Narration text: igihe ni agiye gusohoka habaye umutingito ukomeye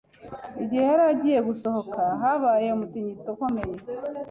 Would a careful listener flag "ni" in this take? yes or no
yes